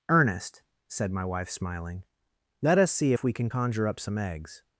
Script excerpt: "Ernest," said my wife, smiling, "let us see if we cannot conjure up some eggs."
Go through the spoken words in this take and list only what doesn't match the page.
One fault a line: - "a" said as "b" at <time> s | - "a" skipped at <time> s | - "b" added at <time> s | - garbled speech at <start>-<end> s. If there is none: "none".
- "cannot" said as "can" at 3.3 s